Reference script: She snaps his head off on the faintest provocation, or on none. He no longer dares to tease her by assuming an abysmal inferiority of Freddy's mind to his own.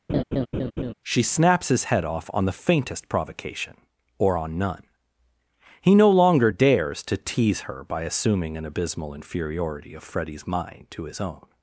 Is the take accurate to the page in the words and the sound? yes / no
no